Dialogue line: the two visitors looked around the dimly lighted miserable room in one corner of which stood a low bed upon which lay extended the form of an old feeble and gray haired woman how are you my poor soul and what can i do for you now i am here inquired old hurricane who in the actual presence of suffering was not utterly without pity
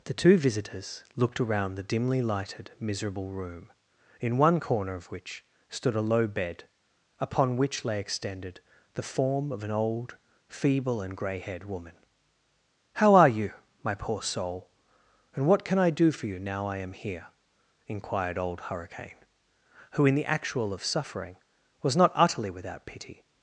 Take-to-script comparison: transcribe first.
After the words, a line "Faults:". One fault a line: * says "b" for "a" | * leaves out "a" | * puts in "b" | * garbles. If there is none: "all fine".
the two visitors looked around the dimly lighted miserable room in one corner of which stood a low bed upon which lay extended the form of an old feeble and gray haired woman how are you my poor soul and what can i do for you now i am here inquired old hurricane who in the actual of suffering was not utterly without pity
Faults:
* leaves out "presence"